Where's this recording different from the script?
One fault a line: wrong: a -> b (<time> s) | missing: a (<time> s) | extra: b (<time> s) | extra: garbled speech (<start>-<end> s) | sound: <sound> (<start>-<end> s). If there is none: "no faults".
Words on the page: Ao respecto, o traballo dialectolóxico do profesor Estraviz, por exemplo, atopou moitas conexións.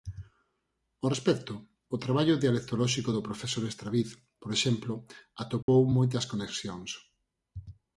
sound: dropout (5.6-5.7 s)